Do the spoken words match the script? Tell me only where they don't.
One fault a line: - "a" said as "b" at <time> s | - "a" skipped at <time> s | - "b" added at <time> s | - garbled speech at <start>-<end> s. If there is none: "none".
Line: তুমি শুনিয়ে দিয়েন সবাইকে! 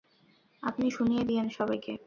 - "তুমি" said as "আপনি" at 0.6 s